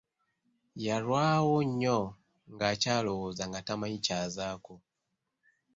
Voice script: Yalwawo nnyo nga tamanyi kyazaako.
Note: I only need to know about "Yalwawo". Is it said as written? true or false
true